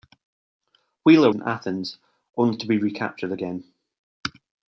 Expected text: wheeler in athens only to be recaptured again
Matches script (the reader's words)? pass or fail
pass